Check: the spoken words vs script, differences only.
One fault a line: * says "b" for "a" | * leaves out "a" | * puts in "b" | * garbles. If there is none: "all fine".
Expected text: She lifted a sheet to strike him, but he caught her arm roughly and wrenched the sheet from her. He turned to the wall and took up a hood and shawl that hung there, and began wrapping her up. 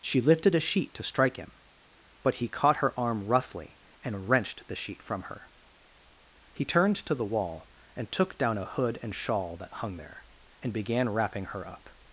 * says "down" for "up"